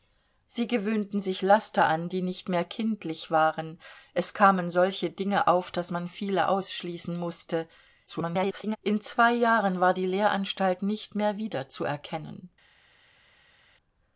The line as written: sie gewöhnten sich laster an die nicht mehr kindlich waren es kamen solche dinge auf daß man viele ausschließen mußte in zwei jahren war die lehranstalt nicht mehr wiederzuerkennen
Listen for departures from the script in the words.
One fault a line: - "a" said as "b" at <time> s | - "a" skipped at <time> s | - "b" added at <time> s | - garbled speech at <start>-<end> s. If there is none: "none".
- garbled speech at 8.1-8.8 s